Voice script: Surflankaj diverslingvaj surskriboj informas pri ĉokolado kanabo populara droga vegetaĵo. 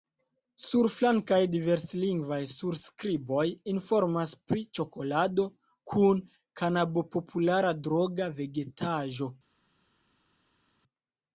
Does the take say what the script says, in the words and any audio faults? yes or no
no